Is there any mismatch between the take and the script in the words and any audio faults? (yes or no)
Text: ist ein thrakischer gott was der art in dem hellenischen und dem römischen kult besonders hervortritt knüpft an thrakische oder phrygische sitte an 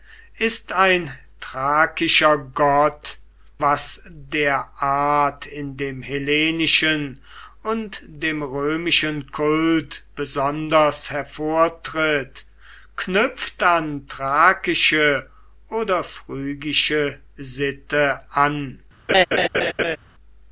yes